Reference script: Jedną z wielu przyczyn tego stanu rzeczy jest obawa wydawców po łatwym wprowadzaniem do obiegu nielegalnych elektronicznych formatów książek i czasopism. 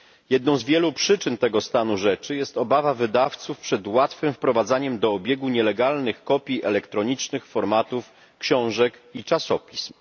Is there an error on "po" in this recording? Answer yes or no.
yes